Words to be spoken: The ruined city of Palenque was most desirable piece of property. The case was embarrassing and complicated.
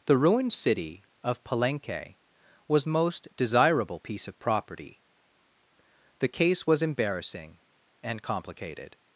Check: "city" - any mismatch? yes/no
no